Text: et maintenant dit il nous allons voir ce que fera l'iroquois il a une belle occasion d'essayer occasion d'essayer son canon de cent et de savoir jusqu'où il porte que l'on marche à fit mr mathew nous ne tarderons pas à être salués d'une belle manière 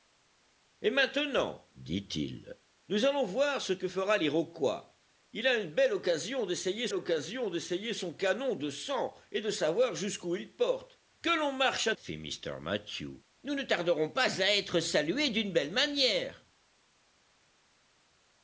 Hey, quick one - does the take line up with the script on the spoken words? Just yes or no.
yes